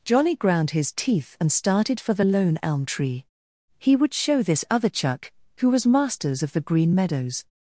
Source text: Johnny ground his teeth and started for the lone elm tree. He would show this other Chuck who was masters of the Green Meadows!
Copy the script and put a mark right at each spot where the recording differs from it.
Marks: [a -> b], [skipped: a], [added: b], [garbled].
Johnny ground his teeth and started for the lone elm tree. He would show this other Chuck who was masters of the Green Meadows!